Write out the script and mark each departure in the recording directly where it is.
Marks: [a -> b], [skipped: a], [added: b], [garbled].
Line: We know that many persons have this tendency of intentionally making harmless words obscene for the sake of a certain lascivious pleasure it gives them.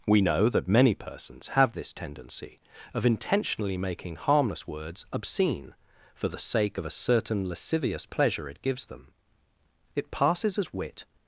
We know that many persons have this tendency of intentionally making harmless words obscene for the sake of a certain lascivious pleasure it gives them. [added: It passes as wit]